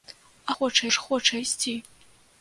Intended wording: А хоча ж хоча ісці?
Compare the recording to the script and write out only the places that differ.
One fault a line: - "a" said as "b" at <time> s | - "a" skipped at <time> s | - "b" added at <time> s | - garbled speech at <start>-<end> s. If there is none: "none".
none